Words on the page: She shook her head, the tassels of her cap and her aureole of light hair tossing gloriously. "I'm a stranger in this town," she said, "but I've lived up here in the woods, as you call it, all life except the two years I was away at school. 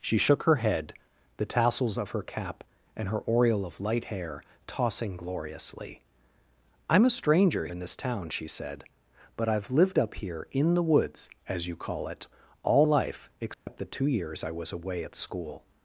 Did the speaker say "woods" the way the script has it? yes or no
yes